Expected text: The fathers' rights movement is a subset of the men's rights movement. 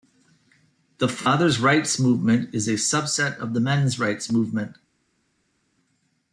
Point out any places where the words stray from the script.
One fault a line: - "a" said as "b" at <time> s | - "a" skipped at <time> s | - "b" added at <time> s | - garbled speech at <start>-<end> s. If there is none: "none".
none